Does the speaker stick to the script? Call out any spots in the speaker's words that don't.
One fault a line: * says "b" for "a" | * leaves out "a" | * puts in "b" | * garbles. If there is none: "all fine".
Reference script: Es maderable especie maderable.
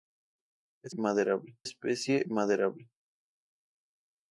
all fine